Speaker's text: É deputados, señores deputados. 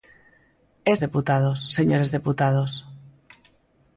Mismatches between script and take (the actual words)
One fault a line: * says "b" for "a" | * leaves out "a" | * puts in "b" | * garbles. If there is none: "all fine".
all fine